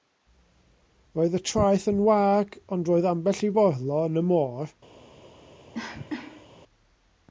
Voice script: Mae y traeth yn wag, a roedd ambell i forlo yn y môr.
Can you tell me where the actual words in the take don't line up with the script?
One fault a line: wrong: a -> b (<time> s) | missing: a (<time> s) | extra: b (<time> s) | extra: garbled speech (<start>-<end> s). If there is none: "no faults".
wrong: Mae -> Roedd (1.2 s)
wrong: a -> ond (2.8 s)